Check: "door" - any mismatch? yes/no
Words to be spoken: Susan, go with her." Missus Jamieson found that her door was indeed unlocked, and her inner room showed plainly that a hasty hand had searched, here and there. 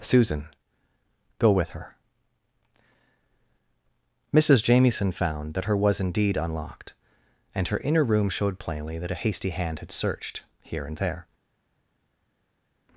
yes